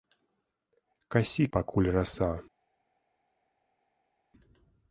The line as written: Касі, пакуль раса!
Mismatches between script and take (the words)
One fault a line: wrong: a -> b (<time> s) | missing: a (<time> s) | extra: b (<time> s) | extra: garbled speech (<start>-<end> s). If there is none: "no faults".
no faults